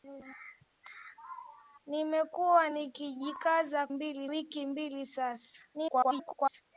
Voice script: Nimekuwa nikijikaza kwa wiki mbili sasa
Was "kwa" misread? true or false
true